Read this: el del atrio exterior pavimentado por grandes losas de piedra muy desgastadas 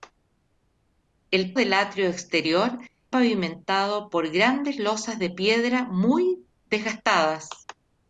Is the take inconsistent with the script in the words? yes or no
no